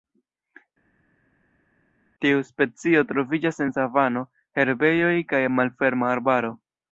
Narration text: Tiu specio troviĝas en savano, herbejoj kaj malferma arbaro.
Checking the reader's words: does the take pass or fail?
pass